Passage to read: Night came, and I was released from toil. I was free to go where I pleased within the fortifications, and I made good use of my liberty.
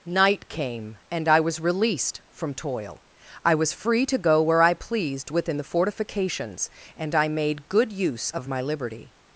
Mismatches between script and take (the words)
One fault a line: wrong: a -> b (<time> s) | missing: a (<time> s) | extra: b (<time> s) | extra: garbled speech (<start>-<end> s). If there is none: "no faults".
no faults